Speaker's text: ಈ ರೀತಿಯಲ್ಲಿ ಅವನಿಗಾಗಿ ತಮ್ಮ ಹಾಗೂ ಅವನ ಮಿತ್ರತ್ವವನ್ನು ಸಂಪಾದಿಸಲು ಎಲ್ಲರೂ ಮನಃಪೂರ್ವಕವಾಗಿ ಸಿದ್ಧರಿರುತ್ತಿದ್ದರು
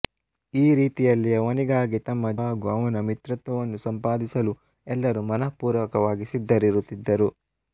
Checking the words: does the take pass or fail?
pass